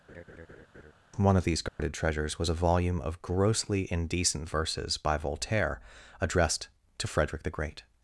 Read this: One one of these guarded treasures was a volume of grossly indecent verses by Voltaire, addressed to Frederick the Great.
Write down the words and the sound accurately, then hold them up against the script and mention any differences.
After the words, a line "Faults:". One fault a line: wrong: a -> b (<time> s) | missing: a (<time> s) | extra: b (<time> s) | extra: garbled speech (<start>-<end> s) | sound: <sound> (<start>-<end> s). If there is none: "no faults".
One of these guarded treasures was a volume of grossly indecent verses by Voltaire, addressed to Frederick the Great.
Faults:
sound: laugh (0.1-0.9 s)
missing: one (1.4 s)
sound: dropout (1.7-1.8 s)